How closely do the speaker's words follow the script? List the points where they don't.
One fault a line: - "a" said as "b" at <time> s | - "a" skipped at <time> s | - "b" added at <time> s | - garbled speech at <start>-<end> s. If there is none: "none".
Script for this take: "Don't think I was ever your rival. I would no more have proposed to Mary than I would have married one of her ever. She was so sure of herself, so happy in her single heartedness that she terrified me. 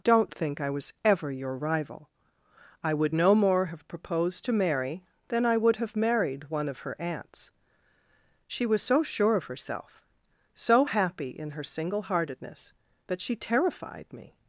- "ever" said as "aunts" at 7.0 s